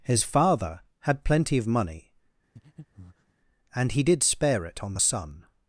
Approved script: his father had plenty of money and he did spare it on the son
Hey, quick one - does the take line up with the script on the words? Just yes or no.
yes